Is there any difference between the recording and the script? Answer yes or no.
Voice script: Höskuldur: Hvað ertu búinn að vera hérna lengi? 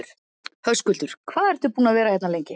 no